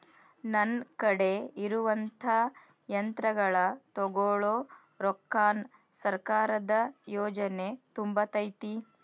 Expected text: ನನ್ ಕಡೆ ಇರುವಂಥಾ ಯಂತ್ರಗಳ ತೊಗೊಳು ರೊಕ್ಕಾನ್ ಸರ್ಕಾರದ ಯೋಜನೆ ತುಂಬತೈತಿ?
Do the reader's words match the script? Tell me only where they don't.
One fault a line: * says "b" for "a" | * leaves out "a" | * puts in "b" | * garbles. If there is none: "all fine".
all fine